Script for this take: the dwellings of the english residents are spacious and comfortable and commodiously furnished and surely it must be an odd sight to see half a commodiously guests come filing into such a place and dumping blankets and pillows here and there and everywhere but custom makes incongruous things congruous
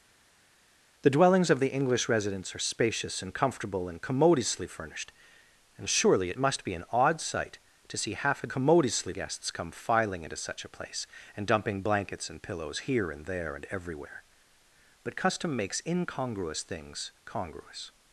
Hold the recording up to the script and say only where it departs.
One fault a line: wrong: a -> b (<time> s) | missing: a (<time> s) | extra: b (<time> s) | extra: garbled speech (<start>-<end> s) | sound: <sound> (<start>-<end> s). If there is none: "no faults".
no faults